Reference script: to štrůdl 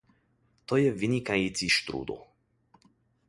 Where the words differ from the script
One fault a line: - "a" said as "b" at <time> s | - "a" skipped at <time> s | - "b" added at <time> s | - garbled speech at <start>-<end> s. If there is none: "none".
- "je vynikající" added at 0.8 s